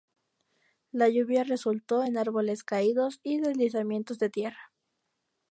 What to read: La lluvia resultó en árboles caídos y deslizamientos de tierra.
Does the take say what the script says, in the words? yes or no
yes